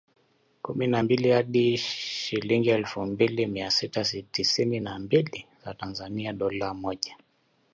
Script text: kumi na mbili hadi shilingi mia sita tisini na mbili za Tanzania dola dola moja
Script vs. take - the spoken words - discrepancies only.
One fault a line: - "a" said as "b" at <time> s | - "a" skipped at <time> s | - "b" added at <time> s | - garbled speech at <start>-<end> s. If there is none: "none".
- "elfu mbili" added at 2.7 s
- "dola" skipped at 6.7 s